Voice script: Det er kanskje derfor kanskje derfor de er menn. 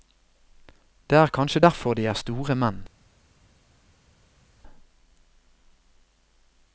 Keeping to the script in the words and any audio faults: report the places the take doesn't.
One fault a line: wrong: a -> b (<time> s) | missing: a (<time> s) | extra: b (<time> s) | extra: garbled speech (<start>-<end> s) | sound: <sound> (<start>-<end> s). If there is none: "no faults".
missing: kanskje derfor (1.9 s)
extra: store (2.1 s)